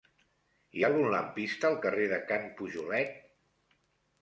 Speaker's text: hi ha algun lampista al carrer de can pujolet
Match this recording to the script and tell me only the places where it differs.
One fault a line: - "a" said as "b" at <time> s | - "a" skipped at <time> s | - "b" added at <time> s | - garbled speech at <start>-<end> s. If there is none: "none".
none